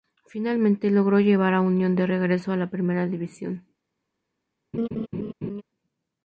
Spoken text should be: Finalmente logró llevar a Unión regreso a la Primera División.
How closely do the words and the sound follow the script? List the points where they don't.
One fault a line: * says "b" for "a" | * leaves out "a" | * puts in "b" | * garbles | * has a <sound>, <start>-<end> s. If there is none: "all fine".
* puts in "de"
* has a laugh, 4.7-5.6 s